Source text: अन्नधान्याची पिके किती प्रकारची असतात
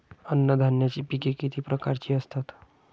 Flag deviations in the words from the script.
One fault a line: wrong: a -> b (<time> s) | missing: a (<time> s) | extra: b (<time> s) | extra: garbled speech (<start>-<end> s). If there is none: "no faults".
no faults